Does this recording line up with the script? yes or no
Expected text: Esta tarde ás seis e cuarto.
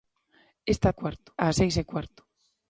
no